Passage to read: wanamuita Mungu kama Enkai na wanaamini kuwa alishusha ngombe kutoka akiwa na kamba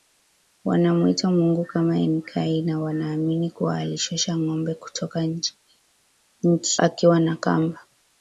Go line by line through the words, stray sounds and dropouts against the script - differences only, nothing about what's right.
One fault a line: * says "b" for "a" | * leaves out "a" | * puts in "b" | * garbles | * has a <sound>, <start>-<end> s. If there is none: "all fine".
all fine